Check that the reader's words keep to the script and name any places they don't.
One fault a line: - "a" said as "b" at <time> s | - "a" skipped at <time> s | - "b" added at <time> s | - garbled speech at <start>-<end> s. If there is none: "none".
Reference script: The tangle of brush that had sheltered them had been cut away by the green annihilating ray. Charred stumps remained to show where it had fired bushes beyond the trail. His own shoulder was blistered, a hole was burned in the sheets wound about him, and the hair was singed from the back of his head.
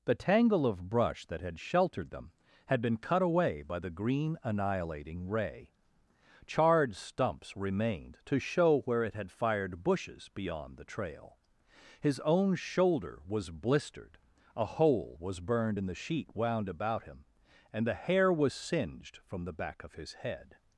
- "sheets" said as "sheet" at 15.9 s